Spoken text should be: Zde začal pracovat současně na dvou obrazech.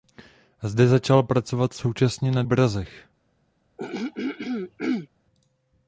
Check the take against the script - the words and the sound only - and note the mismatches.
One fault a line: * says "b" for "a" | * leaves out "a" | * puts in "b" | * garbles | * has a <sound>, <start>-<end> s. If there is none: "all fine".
* leaves out "dvou"
* has a throat clearing, 3.8-5.1 s